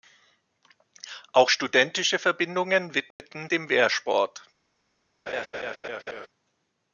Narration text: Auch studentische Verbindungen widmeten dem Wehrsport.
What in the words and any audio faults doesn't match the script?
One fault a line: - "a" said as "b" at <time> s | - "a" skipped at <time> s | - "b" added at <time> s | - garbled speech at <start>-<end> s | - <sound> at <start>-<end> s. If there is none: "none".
- dropout at 3.1-3.2 s
- laugh at 5.3-6.3 s